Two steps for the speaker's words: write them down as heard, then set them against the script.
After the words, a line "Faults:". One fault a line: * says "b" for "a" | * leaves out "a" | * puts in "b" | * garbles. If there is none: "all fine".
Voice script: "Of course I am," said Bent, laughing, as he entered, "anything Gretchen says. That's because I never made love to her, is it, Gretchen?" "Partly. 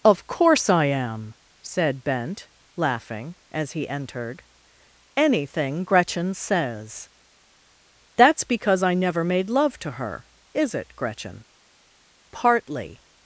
"Of course I am," said Bent, laughing, as he entered, "anything Gretchen says. That's because I never made love to her, is it, Gretchen?" "Partly.
Faults:
all fine